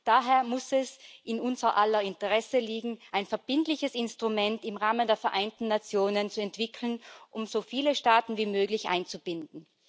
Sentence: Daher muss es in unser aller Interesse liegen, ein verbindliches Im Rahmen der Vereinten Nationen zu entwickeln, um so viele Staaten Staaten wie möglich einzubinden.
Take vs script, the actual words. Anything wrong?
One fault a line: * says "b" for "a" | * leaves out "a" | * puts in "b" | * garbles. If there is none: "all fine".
* puts in "Instrument"
* leaves out "Staaten"